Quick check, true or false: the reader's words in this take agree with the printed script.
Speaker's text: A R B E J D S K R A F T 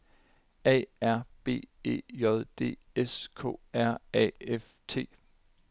true